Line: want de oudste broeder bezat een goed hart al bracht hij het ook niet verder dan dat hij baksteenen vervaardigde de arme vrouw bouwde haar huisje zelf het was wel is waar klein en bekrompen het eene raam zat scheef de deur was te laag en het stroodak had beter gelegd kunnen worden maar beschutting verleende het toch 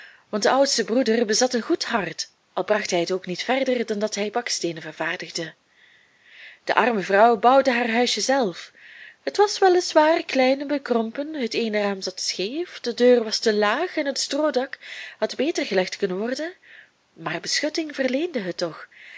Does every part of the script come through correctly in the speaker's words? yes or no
yes